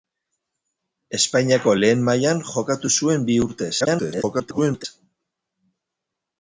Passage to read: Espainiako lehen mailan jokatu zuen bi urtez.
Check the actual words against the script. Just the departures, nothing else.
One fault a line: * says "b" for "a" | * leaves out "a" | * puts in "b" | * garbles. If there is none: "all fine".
* garbles